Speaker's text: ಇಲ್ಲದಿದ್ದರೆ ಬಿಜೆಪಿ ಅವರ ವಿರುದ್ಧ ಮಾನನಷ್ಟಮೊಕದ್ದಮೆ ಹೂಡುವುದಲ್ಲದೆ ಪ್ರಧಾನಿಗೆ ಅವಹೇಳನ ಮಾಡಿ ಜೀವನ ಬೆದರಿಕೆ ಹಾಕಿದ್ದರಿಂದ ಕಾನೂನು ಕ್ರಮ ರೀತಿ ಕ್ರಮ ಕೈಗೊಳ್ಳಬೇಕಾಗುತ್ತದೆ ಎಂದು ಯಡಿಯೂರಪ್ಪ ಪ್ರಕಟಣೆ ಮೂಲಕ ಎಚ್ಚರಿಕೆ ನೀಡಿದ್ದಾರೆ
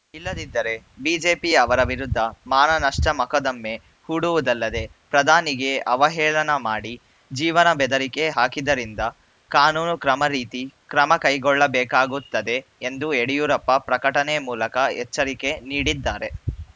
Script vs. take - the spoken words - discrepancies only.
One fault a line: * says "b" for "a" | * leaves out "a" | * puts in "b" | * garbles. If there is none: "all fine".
all fine